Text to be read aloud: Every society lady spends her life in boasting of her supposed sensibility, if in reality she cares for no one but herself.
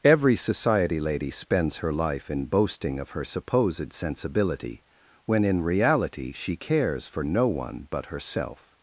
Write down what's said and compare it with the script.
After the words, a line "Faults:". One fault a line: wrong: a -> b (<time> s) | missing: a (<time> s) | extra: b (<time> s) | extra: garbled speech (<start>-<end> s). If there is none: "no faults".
Every society lady spends her life in boasting of her supposed sensibility, when in reality she cares for no one but herself.
Faults:
wrong: if -> when (5.2 s)